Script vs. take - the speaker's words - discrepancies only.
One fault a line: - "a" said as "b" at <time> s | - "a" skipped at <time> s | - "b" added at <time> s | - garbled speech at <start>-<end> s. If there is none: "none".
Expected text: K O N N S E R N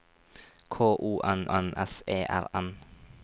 none